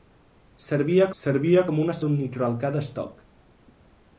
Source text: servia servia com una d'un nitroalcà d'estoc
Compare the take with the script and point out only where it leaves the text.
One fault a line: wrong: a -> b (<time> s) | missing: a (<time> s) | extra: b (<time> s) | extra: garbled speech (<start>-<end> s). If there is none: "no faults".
no faults